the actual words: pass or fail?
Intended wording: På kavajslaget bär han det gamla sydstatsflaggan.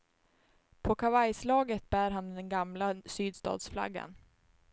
fail